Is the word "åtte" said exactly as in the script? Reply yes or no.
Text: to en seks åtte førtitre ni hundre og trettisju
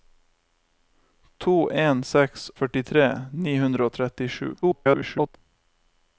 no